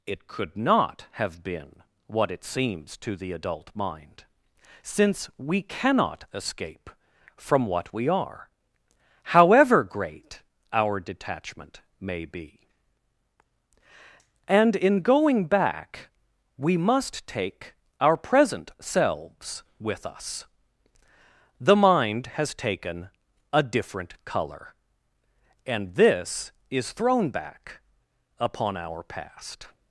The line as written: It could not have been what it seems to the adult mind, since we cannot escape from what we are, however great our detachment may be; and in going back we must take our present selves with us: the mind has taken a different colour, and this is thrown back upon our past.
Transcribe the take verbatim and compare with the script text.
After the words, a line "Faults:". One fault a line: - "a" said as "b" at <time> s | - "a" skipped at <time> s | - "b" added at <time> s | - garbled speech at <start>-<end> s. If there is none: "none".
It could not have been what it seems to the adult mind, since we cannot escape from what we are, however great our detachment may be; and in going back we must take our present selves with us: the mind has taken a different colour, and this is thrown back upon our past.
Faults:
none